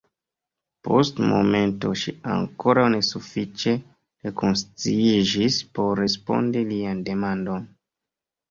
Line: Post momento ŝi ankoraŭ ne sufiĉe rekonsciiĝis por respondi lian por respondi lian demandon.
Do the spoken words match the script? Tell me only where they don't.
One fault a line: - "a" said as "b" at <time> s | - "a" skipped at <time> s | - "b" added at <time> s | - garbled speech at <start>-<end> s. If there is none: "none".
- "por respondi lian" skipped at 7.0 s